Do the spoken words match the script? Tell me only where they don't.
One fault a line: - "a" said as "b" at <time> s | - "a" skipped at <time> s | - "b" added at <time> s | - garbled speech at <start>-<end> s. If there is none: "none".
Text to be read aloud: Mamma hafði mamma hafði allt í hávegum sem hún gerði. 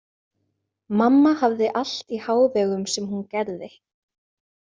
- "mamma hafði" skipped at 1.7 s